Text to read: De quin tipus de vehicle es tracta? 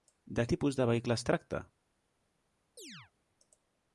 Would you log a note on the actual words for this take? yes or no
yes